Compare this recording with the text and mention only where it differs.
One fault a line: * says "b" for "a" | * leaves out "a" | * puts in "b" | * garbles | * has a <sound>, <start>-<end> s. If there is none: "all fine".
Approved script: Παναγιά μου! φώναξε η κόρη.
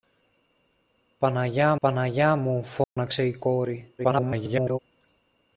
* puts in "παναγιά"
* has a dropout, 2.8-3.0 s
* garbles